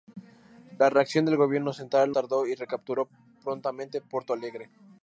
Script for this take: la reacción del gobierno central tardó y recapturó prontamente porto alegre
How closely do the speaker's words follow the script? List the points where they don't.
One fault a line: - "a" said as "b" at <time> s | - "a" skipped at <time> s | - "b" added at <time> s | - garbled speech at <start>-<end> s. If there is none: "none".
none